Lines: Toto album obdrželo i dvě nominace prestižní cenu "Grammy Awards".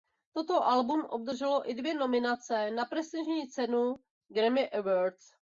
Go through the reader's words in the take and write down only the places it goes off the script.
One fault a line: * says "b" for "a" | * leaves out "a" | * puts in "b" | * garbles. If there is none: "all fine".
* puts in "na"